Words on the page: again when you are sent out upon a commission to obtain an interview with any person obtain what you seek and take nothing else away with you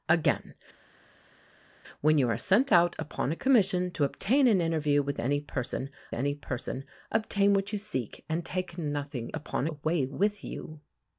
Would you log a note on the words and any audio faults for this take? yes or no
yes